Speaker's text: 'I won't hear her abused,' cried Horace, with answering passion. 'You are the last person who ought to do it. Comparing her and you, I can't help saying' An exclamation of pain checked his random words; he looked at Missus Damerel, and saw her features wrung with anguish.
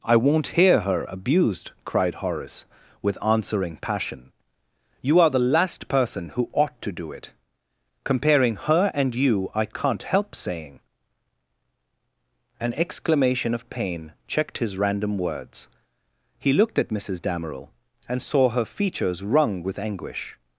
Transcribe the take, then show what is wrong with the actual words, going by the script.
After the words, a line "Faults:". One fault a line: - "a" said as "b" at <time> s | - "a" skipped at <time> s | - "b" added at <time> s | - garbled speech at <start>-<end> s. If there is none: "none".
'I won't hear her abused,' cried Horace, with answering passion. 'You are the last person who ought to do it. Comparing her and you, I can't help saying' An exclamation of pain checked his random words; he looked at Missus Damerel, and saw her features wrung with anguish.
Faults:
none